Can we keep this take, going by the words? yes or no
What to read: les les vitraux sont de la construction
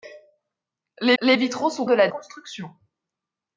yes